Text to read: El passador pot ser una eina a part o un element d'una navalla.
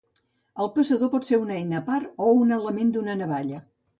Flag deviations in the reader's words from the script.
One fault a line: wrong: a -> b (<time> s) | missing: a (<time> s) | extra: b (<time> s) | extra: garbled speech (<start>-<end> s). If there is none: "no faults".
no faults